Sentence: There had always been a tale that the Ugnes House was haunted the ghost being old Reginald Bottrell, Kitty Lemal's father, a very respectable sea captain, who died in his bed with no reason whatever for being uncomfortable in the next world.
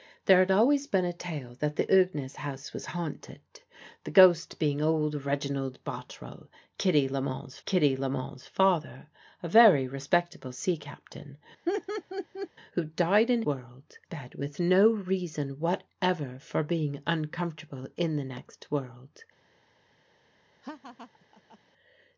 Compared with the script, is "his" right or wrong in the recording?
wrong